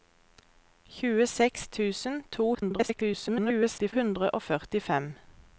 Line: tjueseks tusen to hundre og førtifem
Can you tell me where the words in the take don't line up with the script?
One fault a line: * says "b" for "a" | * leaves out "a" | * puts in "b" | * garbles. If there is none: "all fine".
* garbles